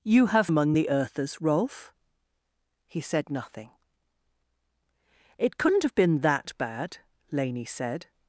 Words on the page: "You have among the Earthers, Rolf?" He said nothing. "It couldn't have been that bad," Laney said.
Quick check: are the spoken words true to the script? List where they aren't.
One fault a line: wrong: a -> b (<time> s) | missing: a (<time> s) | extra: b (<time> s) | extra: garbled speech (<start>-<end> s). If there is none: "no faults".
no faults